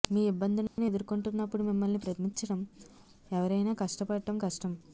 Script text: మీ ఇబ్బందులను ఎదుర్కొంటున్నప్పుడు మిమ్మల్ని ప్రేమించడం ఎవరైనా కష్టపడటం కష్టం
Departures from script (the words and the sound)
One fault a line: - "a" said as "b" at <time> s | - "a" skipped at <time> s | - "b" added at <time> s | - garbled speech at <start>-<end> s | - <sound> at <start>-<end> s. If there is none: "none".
- dropout at 0.7-0.8 s